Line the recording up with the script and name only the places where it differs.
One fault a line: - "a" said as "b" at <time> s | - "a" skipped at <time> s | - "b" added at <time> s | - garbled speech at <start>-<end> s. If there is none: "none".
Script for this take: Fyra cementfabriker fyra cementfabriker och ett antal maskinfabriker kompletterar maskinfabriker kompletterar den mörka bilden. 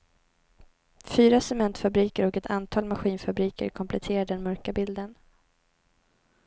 - "fyra cementfabriker" skipped at 2.3 s
- "maskinfabriker kompletterar" skipped at 4.2 s